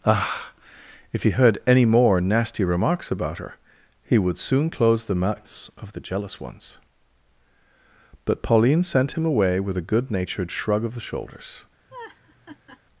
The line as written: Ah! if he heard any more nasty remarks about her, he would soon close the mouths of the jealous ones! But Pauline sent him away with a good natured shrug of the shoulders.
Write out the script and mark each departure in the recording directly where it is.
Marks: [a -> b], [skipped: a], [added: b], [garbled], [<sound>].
Ah! if he heard any more nasty remarks about her, he would soon close the mouths of the jealous ones! But Pauline sent him away with a good natured shrug of the shoulders. [laugh]